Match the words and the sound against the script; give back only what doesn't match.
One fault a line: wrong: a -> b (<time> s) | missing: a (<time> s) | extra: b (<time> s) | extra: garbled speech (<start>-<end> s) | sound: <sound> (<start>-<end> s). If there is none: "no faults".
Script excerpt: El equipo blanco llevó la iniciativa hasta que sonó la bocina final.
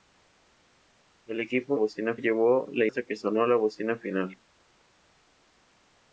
wrong: blanco -> bocina (1.7 s)
missing: iniciativa (2.9 s)